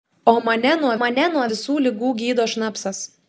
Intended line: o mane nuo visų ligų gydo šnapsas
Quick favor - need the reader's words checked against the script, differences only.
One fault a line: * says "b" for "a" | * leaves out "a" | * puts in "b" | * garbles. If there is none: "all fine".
* puts in "mane nuo"